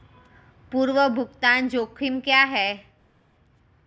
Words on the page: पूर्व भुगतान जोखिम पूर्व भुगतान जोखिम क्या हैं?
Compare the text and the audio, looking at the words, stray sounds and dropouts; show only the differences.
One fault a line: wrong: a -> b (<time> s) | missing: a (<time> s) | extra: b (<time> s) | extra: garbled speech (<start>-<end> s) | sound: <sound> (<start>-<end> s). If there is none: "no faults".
missing: पूर्व भुगतान जोखिम (2.2 s)